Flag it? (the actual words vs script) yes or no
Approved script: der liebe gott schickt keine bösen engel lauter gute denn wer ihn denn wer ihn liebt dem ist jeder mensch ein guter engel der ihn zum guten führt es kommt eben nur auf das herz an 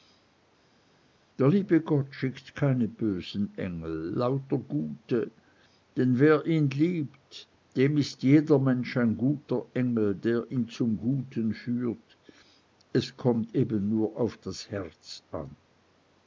yes